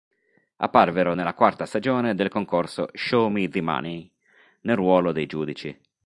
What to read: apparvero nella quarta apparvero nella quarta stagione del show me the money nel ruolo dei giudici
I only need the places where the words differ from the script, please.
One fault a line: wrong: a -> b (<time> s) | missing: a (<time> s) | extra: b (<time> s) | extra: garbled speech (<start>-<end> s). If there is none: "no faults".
missing: apparvero nella quarta (1.7 s)
extra: concorso (2.3 s)